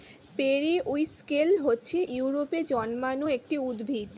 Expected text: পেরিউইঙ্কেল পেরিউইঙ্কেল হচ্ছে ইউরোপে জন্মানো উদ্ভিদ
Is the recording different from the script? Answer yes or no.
yes